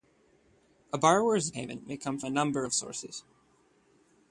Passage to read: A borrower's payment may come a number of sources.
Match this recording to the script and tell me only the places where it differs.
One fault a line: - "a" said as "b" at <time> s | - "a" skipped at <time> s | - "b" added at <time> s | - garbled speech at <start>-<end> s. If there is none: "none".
none